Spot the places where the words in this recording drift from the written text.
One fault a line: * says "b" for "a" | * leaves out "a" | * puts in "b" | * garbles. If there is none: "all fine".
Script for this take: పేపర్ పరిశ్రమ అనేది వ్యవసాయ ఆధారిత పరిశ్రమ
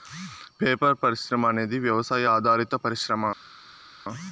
all fine